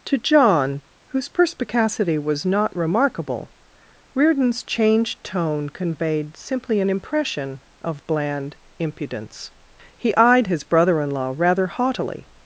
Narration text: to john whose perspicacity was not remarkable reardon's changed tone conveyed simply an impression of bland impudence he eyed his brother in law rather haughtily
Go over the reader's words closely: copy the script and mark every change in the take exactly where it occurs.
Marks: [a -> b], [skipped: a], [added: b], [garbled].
to john whose perspicacity was not remarkable reardon's changed tone conveyed simply an impression of bland impudence he eyed his brother in law rather haughtily